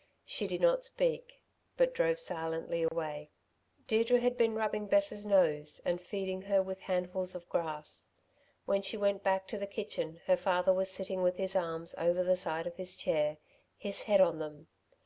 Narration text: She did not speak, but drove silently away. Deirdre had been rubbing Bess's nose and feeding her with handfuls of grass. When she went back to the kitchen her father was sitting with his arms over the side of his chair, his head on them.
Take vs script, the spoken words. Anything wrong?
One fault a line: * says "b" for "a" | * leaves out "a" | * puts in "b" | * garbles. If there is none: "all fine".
all fine